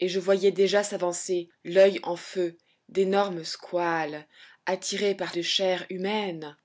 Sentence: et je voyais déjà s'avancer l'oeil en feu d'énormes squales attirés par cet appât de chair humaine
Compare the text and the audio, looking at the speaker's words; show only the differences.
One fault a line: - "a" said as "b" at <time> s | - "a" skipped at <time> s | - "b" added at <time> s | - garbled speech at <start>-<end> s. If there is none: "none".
- "cet appât" skipped at 5.3 s